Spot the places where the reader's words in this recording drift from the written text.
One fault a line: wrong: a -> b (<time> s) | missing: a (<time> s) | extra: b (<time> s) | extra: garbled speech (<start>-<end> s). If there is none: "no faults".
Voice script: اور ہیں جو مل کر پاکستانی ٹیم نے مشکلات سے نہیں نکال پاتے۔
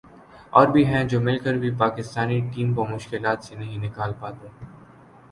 extra: بھی (0.7 s)
extra: بھی (1.6 s)
wrong: نے -> کو (2.7 s)